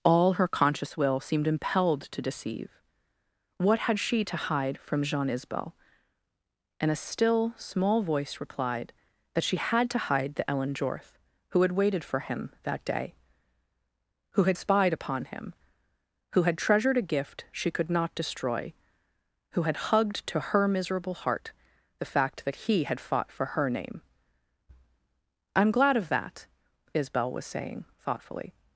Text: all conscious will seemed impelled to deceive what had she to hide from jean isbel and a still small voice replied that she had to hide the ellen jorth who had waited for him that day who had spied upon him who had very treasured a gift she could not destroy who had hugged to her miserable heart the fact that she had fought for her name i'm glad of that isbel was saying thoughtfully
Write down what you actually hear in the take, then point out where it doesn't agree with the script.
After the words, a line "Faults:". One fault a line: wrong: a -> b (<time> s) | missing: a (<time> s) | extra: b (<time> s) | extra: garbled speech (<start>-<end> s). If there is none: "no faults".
all her conscious will seemed impelled to deceive what had she to hide from jean isbel and a still small voice replied that she had to hide the ellen jorth who had waited for him that day who had spied upon him who had treasured a gift she could not destroy who had hugged to her miserable heart the fact that he had fought for her name i'm glad of that isbel was saying thoughtfully
Faults:
extra: her (0.3 s)
missing: very (16.6 s)
wrong: she -> he (22.7 s)